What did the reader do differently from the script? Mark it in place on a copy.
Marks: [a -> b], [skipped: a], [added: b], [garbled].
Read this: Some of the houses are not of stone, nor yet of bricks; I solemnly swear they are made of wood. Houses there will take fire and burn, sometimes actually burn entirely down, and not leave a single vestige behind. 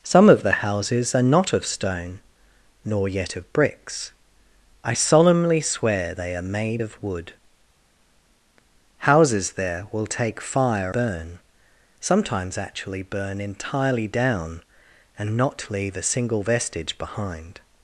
Some of the houses are not of stone, nor yet of bricks; I solemnly swear they are made of wood. Houses there will take fire [skipped: and] burn, sometimes actually burn entirely down, and not leave a single vestige behind.